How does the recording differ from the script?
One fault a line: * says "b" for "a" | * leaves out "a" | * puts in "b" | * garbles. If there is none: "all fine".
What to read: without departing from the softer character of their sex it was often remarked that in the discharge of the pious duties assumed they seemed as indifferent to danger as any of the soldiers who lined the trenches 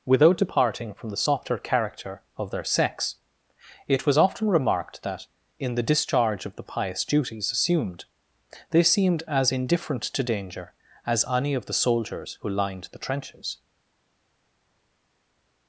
all fine